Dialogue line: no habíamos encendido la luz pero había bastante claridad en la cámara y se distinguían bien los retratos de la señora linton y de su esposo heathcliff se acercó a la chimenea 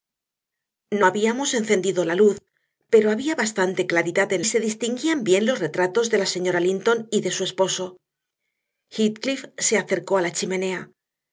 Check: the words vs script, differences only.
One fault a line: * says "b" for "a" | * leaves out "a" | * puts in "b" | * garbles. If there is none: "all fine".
* leaves out "la cámara y"